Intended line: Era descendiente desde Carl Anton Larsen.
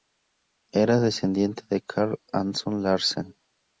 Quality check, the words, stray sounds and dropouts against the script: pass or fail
fail